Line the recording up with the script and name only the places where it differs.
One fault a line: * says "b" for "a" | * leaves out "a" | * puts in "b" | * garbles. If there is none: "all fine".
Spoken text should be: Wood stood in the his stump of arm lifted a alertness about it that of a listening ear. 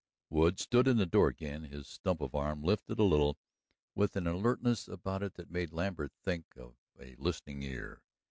* puts in "door again"
* puts in "little with an"
* puts in "made Lambert think"